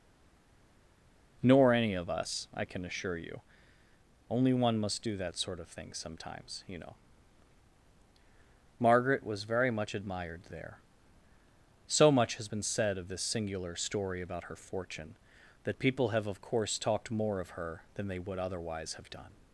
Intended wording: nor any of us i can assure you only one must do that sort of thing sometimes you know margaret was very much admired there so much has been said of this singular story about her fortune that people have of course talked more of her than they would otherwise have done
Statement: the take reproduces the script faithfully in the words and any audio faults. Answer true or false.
true